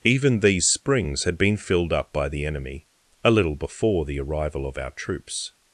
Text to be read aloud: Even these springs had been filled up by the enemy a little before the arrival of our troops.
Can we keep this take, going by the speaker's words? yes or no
yes